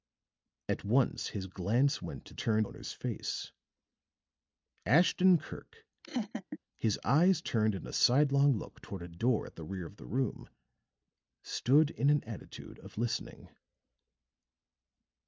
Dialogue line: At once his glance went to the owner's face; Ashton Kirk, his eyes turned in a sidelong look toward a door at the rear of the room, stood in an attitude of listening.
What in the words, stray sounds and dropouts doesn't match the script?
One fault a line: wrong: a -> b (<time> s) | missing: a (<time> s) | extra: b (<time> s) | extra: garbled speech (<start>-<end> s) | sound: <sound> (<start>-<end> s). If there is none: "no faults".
wrong: the -> turned (2.3 s)
sound: laugh (6.0-6.6 s)